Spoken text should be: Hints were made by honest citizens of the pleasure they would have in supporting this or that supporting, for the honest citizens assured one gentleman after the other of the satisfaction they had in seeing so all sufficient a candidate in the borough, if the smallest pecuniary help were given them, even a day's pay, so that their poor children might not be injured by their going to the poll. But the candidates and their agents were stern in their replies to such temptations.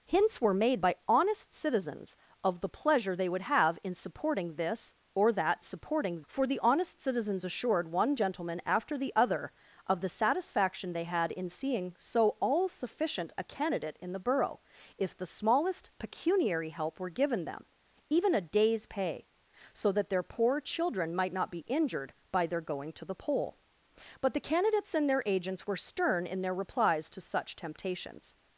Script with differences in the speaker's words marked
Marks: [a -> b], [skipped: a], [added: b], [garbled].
Hints were made by honest citizens of the pleasure they would have in supporting this or that supporting, for the honest citizens assured one gentleman after the other of the satisfaction they had in seeing so all sufficient a candidate in the borough, if the smallest pecuniary help were given them, even a day's pay, so that their poor children might not be injured by their going to the poll. But the candidates and their agents were stern in their replies to such temptations.